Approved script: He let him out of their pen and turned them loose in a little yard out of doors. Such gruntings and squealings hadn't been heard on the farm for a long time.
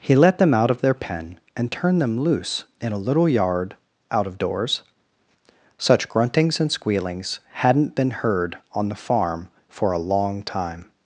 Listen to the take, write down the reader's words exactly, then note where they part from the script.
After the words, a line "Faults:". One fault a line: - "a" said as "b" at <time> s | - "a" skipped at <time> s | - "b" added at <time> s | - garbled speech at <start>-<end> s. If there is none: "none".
He let them out of their pen and turned them loose in a little yard out of doors. Such gruntings and squealings hadn't been heard on the farm for a long time.
Faults:
- "him" said as "them" at 0.4 s